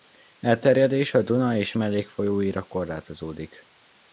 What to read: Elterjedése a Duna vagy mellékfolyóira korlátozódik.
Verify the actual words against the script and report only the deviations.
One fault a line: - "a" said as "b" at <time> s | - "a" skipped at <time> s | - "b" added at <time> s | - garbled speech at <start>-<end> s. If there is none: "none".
- "vagy" said as "és" at 1.6 s